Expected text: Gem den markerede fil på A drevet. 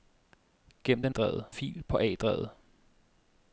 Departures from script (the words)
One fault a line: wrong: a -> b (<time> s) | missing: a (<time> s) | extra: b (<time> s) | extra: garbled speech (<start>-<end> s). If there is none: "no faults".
wrong: markerede -> drevet (1.1 s)